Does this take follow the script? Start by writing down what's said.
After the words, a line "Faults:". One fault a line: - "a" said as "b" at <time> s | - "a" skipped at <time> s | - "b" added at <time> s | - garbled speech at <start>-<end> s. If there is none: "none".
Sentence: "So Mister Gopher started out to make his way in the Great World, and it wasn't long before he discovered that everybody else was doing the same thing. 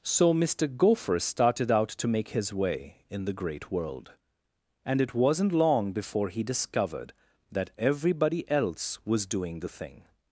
"So Mister Gopher started out to make his way in the Great World, and it wasn't long before he discovered that everybody else was doing the thing.
Faults:
- "same" skipped at 9.7 s